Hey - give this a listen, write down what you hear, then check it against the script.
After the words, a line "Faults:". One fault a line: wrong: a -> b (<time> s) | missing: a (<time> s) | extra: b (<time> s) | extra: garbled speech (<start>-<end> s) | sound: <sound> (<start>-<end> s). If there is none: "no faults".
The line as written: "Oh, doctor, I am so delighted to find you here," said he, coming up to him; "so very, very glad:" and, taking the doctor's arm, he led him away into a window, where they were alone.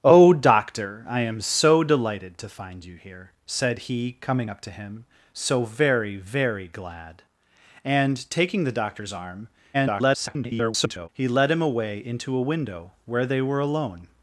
"Oh, doctor, I am so delighted to find you here," said he, coming up to him; "so very, very glad:" and, taking the doctor's arm, [garbled] he led him away into a window, where they were alone.
Faults:
extra: garbled speech (9.7-11.1 s)